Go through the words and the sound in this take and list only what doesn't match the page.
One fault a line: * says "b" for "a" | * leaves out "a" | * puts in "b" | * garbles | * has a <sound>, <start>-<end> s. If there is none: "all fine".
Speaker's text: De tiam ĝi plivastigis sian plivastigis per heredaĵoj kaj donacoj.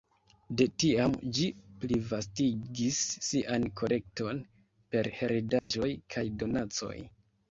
* says "kolekton" for "plivastigis"
* has a dropout, 5.6-5.7 s